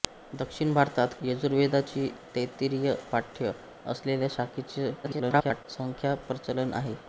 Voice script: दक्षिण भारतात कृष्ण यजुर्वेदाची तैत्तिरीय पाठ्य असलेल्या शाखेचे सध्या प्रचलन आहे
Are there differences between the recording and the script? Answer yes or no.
yes